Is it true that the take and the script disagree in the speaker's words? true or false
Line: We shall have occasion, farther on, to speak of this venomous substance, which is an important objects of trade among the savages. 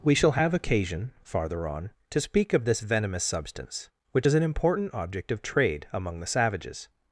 true